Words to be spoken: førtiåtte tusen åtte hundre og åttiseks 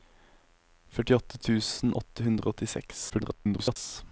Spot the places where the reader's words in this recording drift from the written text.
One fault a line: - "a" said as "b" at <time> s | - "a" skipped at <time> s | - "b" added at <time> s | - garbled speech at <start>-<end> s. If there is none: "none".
- garbled speech at 3.1-3.8 s